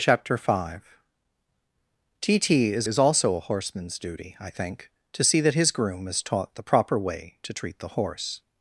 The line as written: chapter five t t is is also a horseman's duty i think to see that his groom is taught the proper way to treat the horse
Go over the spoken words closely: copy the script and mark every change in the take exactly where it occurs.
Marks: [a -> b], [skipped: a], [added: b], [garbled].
chapter five t t is is also a horseman's duty i think to see that his groom is taught the proper way to treat the horse